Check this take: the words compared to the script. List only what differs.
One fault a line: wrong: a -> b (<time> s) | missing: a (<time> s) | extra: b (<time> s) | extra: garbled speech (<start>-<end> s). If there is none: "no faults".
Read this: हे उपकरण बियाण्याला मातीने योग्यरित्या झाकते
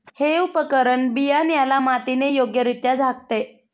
no faults